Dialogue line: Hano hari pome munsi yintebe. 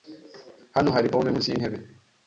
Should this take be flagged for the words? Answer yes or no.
no